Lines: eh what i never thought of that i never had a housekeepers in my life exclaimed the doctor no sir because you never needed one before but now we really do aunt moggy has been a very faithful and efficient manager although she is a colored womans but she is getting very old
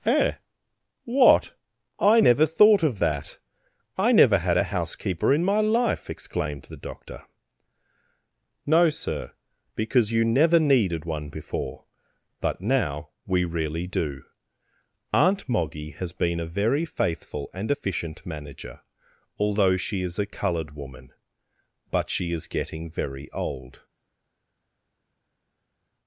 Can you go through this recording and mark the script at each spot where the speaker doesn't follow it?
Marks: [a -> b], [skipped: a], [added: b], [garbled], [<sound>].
eh what i never thought of that i never had a [housekeepers -> housekeeper] in my life exclaimed the doctor no sir because you never needed one before but now we really do aunt moggy has been a very faithful and efficient manager although she is a colored [womans -> woman] but she is getting very old